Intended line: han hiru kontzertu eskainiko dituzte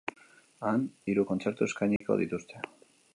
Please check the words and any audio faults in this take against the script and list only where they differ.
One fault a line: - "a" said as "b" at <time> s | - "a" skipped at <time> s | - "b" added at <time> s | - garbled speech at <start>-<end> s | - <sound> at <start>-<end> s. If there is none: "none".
- dropout at 2.0-2.0 s